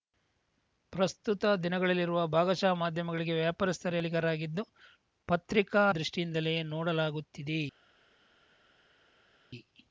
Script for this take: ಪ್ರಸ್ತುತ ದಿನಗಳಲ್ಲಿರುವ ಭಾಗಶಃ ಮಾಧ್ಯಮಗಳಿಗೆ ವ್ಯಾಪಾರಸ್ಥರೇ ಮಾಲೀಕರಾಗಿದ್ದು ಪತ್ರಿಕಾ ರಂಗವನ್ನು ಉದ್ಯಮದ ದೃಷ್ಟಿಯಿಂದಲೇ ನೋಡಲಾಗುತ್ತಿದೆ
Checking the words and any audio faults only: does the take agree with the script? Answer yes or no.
no